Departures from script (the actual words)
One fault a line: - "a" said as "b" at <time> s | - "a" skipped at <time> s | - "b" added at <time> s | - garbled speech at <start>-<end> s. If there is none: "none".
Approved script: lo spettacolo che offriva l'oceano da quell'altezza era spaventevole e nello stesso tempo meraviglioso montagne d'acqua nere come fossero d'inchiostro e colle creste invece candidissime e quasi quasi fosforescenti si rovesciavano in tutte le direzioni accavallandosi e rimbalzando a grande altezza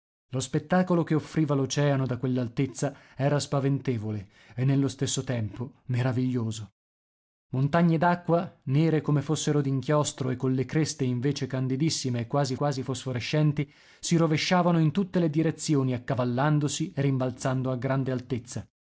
none